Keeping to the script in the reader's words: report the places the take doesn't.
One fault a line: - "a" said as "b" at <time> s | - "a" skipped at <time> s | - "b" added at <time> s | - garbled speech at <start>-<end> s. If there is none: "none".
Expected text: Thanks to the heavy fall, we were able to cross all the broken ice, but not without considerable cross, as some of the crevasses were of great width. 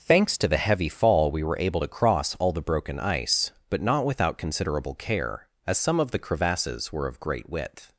- "cross" said as "care" at 4.9 s